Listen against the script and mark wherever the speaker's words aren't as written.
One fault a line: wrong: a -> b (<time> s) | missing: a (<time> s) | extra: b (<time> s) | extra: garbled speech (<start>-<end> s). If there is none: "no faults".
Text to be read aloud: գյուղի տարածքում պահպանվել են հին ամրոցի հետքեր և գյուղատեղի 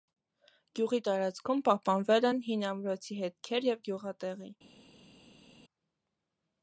no faults